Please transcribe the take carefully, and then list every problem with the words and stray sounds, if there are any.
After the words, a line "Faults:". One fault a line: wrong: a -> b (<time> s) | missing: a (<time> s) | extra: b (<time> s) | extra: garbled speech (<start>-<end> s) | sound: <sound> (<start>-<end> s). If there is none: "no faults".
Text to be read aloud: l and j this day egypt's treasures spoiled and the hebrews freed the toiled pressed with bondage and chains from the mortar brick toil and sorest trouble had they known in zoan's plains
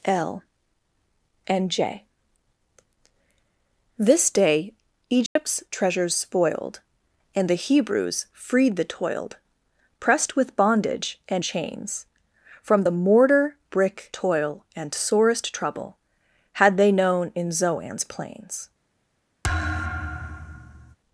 l and j this day egypt's treasures spoiled and the hebrews freed the toiled pressed with bondage and chains from the mortar brick toil and sorest trouble had they known in zoan's plains
Faults:
sound: dropout (5.3-5.4 s)
sound: thud (19.4-21.0 s)